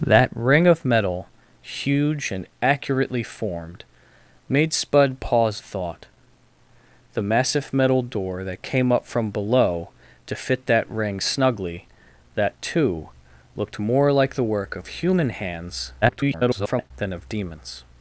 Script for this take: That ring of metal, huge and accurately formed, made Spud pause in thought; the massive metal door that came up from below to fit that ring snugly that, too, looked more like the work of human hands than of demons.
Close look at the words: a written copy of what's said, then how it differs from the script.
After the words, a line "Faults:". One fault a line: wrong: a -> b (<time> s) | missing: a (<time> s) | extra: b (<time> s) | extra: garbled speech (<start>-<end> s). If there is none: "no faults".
That ring of metal, huge and accurately formed, made Spud pause thought; the massive metal door that came up from below to fit that ring snugly that, too, looked more like the work of human hands [garbled] than of demons.
Faults:
missing: in (5.6 s)
extra: garbled speech (16.0-16.9 s)